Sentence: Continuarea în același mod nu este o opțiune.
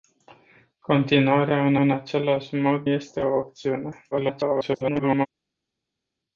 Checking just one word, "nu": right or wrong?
wrong